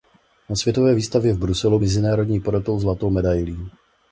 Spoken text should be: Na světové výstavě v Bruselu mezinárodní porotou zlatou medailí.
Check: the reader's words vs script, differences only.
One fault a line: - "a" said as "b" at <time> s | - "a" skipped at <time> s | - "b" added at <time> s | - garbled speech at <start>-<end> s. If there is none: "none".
none